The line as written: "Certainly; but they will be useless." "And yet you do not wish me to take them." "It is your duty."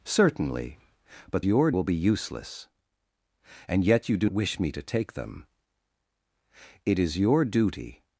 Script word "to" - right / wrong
right